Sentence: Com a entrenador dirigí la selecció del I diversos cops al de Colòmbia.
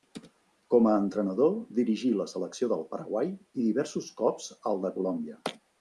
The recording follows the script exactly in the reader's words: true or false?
false